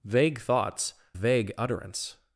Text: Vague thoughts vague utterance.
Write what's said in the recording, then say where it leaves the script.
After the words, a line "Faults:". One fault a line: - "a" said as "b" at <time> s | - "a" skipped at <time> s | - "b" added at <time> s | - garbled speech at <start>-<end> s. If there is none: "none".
Vague thoughts vague utterance.
Faults:
none